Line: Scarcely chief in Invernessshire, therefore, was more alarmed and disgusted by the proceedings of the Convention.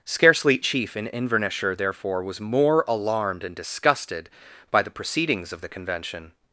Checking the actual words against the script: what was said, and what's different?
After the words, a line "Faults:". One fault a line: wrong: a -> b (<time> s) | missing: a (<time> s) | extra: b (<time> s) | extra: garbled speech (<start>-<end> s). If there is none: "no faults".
Scarcely chief in Invernessshire, therefore, was more alarmed and disgusted by the proceedings of the Convention.
Faults:
no faults